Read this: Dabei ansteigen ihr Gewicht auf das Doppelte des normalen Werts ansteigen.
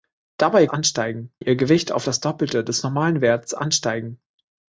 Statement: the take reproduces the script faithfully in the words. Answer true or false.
true